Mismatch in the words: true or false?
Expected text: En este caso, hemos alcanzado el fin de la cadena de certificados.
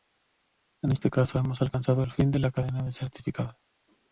false